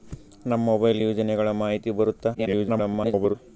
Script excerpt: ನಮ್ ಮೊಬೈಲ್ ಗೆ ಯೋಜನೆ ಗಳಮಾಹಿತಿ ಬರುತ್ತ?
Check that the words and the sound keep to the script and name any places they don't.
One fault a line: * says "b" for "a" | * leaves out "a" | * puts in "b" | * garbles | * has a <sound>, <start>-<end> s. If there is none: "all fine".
* leaves out "ಗೆ"
* garbles